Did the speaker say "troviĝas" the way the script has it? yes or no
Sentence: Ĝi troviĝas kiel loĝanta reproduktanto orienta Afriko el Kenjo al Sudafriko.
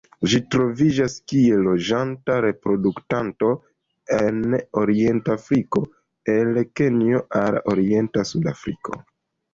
yes